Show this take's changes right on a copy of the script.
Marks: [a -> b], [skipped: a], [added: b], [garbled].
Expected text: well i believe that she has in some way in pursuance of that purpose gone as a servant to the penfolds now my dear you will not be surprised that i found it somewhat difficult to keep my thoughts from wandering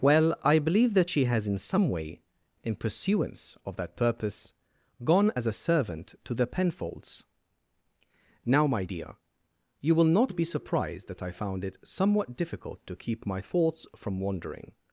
well i believe that she has in some way in pursuance of that purpose gone as a servant to the penfolds now my dear you will not be surprised that i found it somewhat difficult to keep my thoughts from wandering